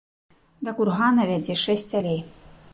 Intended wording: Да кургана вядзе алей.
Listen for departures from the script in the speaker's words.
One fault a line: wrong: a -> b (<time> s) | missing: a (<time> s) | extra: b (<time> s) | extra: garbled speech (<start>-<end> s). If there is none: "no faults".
extra: шэсць (1.7 s)